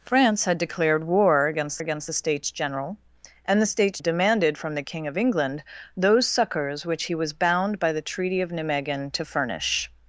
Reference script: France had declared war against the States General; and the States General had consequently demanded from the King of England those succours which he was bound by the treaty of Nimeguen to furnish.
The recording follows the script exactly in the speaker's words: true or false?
false